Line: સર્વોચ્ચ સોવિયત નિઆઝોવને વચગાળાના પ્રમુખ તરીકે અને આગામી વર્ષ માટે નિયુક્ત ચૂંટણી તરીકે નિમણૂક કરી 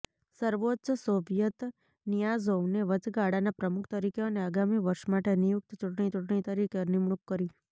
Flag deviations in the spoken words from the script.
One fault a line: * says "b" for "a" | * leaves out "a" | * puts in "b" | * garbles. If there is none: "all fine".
* puts in "ચૂંટણી"